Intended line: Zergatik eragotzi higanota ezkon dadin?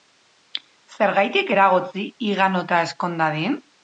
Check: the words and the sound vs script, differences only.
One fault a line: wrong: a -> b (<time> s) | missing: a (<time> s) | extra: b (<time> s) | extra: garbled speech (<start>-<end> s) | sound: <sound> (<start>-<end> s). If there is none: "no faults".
no faults